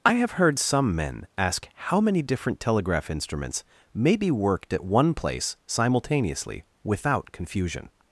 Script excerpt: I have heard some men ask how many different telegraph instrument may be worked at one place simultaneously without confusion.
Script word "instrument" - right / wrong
wrong